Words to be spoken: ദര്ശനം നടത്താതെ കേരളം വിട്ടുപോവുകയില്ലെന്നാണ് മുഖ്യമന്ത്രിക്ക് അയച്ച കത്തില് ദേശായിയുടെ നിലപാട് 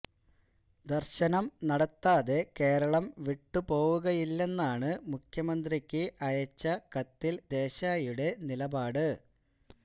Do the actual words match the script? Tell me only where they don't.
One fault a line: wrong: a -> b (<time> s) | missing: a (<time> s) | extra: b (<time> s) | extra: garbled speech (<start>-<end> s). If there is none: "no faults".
no faults